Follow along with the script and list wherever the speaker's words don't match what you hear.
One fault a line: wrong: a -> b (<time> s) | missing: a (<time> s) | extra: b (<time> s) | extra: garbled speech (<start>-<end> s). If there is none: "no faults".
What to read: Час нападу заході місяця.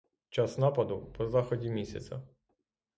extra: по (1.2 s)